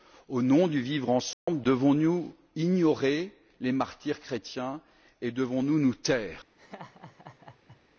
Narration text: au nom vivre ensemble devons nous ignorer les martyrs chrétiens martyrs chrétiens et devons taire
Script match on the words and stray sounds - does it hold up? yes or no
no